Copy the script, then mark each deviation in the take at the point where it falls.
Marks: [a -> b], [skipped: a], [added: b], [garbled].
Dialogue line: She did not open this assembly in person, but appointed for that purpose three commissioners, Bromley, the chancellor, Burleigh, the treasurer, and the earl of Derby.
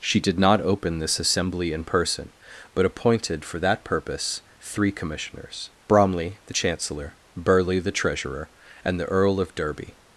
She did not open this assembly in person, but appointed for that purpose three commissioners, Bromley, the chancellor, Burleigh, the treasurer, and the earl of Derby.